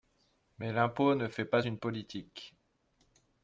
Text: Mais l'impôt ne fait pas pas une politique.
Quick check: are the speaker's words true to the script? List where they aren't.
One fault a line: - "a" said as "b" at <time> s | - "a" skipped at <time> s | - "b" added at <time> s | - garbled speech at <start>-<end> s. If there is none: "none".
- "pas" skipped at 1.6 s